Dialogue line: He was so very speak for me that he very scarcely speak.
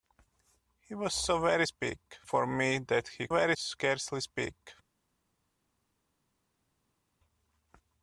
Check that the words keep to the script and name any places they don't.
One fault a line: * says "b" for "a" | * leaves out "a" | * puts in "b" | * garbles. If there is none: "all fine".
all fine